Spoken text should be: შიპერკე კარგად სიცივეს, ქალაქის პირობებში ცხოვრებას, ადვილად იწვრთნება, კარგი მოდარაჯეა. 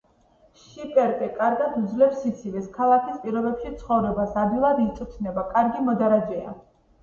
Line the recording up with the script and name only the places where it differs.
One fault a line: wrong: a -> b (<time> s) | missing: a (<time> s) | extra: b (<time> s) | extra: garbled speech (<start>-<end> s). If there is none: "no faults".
extra: უძლებს (1.8 s)